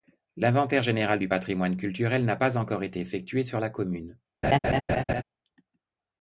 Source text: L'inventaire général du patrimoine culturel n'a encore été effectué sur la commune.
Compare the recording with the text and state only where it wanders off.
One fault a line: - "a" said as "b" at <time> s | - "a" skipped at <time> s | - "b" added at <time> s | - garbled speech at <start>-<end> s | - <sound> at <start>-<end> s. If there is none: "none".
- "pas" added at 2.3 s
- laugh at 4.4-5.2 s